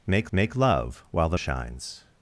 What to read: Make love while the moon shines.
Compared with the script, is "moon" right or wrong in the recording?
wrong